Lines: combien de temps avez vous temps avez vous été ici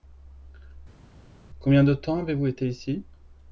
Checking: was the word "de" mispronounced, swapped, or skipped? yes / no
no